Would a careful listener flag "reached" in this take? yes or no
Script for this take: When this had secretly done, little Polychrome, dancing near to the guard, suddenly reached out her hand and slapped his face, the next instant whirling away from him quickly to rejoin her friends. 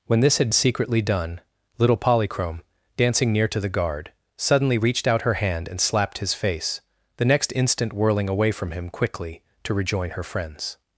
no